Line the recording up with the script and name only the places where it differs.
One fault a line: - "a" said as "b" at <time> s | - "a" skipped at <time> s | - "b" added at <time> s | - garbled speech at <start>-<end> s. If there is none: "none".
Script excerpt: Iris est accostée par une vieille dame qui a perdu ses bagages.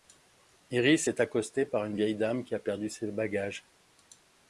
none